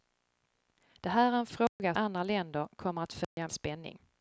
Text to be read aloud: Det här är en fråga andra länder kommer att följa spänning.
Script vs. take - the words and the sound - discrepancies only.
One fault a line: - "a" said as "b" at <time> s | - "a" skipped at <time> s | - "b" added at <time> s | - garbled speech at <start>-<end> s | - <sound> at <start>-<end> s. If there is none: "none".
- dropout at 1.7-1.8 s
- dropout at 3.2-3.4 s